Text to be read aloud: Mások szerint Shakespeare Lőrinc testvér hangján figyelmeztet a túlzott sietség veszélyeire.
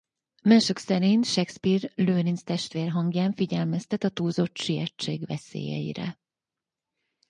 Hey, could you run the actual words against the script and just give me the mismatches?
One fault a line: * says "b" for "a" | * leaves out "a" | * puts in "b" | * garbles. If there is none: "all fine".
all fine